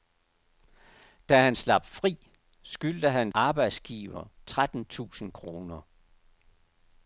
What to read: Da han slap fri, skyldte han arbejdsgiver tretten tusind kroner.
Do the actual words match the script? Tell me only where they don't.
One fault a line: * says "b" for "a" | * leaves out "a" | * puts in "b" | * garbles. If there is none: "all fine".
all fine